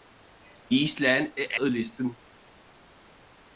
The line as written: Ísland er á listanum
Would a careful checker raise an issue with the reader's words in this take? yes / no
no